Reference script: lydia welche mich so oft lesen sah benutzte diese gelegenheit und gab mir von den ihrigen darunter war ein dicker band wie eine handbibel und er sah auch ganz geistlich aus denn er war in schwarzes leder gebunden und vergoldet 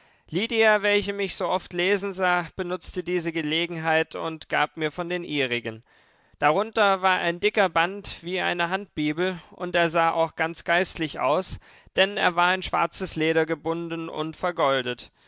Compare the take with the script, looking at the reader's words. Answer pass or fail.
pass